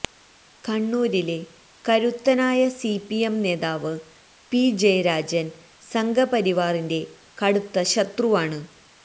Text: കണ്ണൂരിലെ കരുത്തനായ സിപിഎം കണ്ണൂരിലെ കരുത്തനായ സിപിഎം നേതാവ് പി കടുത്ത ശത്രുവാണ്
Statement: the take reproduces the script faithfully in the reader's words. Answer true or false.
false